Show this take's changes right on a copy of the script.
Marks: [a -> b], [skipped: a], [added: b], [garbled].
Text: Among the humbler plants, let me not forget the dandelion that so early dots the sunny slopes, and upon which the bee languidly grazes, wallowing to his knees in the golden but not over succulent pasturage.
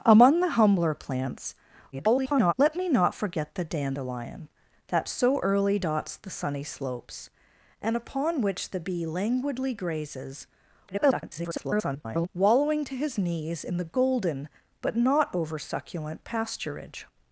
Among the humbler plants, [garbled] let me not forget the dandelion that so early dots the sunny slopes, and upon which the bee languidly grazes, [garbled] wallowing to his knees in the golden but not over succulent pasturage.